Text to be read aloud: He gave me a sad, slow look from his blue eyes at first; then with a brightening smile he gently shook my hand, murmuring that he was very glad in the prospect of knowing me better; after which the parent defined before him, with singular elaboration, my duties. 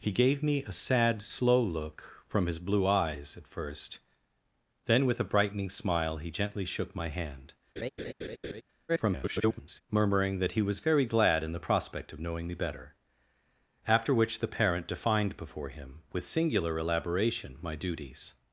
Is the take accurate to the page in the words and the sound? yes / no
no